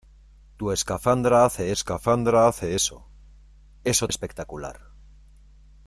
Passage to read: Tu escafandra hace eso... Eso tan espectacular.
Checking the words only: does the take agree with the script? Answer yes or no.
no